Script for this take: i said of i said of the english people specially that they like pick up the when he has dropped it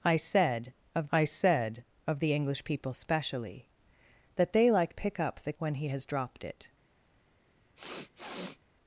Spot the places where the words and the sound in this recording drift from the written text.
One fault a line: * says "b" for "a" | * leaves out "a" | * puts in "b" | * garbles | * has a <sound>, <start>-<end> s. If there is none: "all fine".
* has a sniff, 7.8-8.6 s